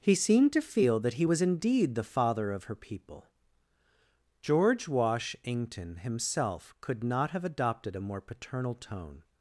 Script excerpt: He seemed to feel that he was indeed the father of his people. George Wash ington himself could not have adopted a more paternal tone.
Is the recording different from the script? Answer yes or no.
yes